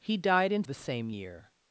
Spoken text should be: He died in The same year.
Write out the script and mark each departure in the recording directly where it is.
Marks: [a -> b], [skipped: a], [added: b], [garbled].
He died in The same year.